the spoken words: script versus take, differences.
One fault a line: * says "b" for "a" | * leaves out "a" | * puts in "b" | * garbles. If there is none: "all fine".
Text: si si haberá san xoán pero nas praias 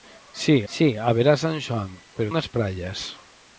all fine